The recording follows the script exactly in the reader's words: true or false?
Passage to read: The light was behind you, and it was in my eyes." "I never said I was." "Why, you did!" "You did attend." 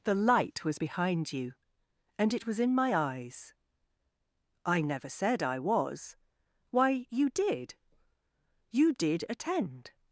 true